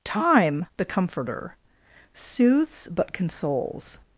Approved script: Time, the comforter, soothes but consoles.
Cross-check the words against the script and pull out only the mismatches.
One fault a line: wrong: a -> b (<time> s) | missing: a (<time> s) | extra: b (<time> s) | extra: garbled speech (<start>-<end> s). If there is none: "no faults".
no faults